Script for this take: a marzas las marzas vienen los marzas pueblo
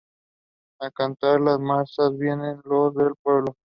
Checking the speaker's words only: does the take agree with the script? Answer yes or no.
no